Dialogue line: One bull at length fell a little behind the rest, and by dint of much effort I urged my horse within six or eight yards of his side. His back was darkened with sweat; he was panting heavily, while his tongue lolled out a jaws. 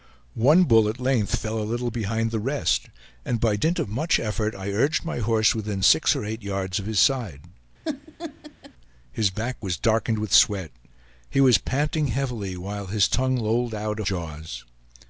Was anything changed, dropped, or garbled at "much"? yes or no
no